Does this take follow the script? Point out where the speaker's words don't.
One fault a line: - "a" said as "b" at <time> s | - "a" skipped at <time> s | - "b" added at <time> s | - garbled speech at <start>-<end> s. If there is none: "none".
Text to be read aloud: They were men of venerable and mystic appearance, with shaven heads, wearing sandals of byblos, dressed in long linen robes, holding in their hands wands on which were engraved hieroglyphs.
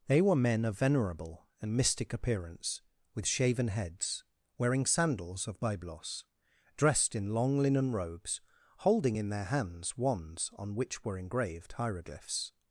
none